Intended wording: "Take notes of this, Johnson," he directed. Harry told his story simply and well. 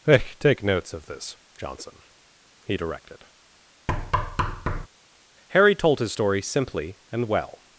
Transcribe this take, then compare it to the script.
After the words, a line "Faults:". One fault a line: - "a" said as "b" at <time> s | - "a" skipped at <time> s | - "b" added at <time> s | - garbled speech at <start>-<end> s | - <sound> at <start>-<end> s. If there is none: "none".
hey "Take notes of this, Johnson," he directed. Harry told his story simply and well.
Faults:
- "hey" added at 0.1 s
- thud at 3.9-4.9 s